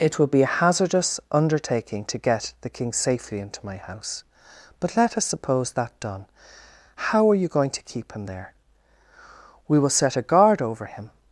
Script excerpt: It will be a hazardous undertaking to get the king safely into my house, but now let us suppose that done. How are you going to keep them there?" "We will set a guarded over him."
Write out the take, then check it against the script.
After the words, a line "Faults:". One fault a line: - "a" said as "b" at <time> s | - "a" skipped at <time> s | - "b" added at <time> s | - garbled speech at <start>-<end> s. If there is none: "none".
It will be a hazardous undertaking to get the king safely into my house, but let us suppose that done. How are you going to keep him there?" "We will set a guard over him."
Faults:
- "now" skipped at 5.0 s
- "them" said as "him" at 8.1 s
- "guarded" said as "guard" at 10.2 s